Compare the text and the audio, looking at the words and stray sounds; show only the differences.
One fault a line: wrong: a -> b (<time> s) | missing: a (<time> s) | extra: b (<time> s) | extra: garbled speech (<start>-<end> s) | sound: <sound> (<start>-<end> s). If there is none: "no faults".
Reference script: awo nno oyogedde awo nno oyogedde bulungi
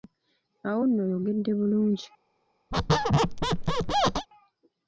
missing: awo nno oyogedde (1.5 s)
sound: squeak (2.7-4.3 s)